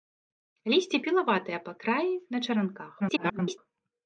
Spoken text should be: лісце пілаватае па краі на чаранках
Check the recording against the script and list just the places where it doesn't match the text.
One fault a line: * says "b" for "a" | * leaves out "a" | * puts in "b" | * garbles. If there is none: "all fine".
* garbles